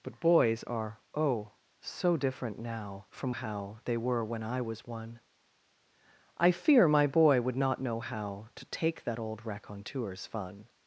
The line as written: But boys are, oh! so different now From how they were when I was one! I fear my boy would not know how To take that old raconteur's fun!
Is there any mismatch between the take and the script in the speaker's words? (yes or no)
no